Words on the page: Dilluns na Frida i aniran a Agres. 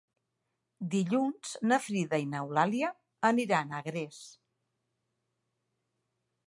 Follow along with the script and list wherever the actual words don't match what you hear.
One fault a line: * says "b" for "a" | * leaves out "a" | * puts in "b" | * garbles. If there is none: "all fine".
* puts in "n'Eulàlia"